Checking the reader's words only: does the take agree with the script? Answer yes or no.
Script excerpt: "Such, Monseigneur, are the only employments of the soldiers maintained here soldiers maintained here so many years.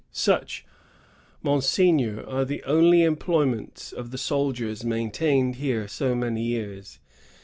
no